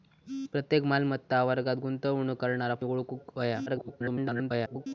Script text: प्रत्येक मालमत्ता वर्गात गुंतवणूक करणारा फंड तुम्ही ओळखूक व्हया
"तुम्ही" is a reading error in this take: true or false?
true